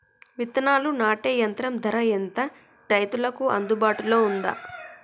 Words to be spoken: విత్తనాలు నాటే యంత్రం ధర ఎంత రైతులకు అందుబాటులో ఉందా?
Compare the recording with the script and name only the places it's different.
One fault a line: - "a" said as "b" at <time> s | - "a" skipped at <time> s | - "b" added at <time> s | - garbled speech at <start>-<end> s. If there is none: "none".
none